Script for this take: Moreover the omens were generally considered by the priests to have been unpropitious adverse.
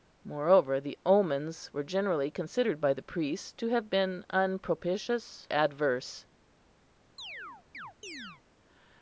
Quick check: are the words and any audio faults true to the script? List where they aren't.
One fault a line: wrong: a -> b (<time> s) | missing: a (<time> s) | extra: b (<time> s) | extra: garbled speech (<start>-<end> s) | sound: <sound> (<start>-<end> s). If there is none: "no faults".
sound: chirp (7.2-8.4 s)